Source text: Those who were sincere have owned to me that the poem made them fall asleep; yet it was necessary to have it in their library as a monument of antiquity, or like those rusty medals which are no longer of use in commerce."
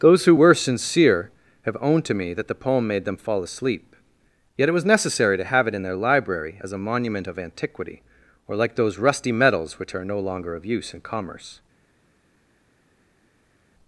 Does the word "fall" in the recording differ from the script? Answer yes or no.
no